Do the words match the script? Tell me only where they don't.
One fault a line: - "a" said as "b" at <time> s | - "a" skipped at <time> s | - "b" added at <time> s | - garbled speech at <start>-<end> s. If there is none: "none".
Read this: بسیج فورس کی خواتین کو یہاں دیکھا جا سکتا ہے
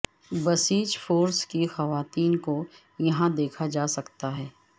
none